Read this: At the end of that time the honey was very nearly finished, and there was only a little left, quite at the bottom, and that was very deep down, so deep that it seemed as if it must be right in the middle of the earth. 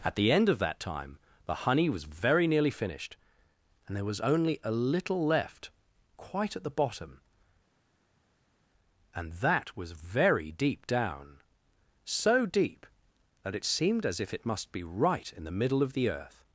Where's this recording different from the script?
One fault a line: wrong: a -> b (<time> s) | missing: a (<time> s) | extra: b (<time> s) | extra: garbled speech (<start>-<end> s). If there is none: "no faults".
no faults